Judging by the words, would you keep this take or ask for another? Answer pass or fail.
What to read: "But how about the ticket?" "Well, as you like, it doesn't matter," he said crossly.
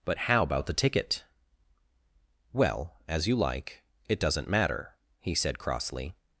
pass